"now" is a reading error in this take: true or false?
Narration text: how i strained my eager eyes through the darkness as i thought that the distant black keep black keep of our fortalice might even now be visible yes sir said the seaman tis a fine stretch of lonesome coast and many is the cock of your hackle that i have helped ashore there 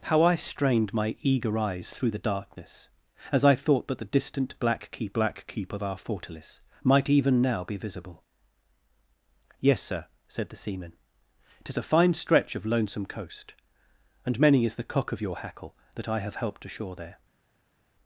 false